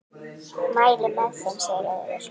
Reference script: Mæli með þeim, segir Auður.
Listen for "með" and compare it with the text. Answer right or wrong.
right